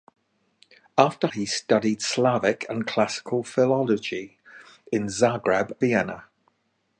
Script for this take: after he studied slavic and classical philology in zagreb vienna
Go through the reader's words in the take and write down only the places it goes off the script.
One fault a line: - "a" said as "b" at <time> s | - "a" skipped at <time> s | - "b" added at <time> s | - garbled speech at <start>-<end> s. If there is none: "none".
none